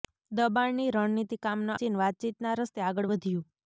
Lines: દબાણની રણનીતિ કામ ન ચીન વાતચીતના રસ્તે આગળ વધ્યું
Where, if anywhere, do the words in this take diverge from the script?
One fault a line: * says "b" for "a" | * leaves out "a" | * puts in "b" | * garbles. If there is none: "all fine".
all fine